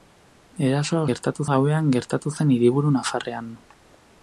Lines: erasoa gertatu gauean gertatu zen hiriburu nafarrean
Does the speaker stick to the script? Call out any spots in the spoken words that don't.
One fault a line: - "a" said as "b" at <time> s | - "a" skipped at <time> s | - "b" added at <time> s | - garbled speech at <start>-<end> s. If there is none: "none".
none